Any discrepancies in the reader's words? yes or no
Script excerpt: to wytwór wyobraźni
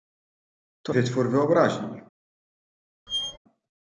no